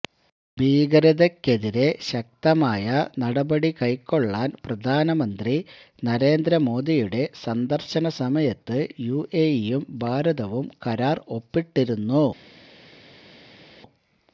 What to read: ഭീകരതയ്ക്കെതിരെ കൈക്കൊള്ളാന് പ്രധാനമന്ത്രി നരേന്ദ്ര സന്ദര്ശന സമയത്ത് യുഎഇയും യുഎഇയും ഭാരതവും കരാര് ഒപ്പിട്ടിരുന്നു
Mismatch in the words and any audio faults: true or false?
true